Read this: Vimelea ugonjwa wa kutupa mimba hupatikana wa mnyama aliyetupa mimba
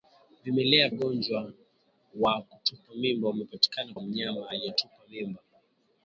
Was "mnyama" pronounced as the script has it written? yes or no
yes